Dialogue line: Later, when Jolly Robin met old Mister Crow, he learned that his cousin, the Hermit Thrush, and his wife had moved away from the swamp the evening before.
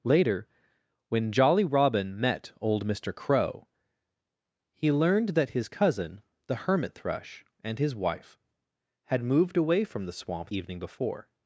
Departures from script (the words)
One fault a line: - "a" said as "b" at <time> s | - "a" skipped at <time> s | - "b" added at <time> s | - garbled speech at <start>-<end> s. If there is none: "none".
- "the" skipped at 10.5 s